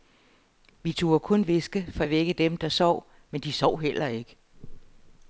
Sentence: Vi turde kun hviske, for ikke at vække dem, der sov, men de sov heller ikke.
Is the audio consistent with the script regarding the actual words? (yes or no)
no